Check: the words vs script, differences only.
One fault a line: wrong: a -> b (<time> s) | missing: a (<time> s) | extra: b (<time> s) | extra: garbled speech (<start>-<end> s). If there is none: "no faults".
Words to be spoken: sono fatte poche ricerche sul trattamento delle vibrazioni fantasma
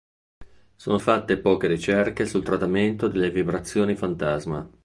no faults